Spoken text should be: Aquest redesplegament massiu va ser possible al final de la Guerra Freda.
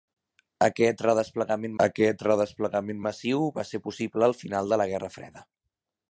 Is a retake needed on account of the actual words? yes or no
yes